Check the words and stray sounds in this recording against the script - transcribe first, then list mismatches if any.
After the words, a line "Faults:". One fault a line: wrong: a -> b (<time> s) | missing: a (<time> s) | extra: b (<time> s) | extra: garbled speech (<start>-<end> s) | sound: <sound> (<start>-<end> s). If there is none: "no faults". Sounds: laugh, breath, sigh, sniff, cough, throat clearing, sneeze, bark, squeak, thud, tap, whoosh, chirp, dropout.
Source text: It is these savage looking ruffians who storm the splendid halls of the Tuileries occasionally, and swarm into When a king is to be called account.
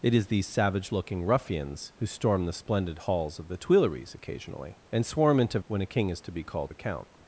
It is these savage looking ruffians who storm the splendid halls of the Tuileries occasionally, and swarm into When a king is to be called account.
Faults:
no faults